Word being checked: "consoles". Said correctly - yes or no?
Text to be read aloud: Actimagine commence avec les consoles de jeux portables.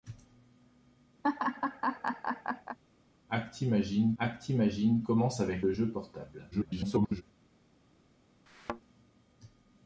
no